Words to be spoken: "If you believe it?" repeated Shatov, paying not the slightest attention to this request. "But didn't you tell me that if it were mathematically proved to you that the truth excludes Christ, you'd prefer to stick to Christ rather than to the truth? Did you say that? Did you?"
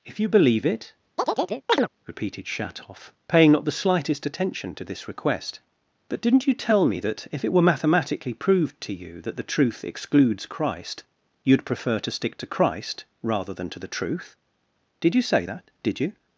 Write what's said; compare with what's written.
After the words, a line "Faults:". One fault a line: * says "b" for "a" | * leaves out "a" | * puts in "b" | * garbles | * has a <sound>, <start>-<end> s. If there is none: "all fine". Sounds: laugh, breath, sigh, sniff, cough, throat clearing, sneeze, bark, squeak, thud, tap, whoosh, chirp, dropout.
"If you believe it?" repeated Shatov, paying not the slightest attention to this request. "But didn't you tell me that if it were mathematically proved to you that the truth excludes Christ, you'd prefer to stick to Christ rather than to the truth? Did you say that? Did you?"
Faults:
* has a chirp, 1.2-1.9 s